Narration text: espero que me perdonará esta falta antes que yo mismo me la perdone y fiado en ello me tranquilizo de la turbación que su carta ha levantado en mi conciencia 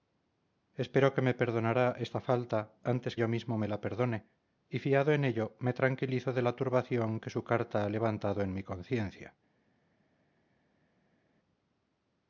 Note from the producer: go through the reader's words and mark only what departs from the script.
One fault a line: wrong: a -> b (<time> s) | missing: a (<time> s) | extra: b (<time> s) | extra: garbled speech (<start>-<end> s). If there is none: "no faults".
missing: que (3.1 s)